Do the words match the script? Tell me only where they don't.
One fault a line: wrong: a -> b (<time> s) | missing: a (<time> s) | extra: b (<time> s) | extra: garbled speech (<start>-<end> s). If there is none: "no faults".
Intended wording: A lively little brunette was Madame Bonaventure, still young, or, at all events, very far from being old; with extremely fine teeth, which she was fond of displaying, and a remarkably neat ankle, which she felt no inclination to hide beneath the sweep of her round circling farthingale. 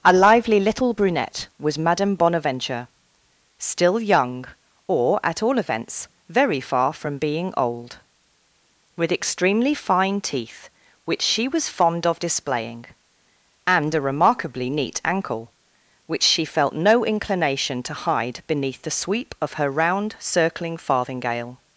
no faults